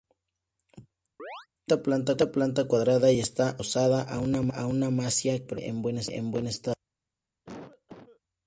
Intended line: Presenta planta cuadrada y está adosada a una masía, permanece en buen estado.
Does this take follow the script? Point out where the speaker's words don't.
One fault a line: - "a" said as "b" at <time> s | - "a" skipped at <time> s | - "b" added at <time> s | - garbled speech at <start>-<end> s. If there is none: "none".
none